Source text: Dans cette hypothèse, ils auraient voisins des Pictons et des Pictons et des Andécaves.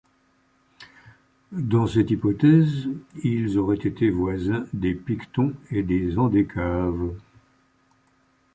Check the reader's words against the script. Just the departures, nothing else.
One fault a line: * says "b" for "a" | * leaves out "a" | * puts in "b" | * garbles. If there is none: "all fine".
* puts in "été"
* leaves out "Pictons et des"